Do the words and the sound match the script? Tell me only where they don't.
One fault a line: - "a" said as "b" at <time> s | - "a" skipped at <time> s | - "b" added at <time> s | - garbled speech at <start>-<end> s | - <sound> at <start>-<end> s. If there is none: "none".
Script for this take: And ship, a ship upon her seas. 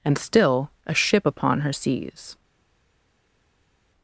- "ship" said as "still" at 0.2 s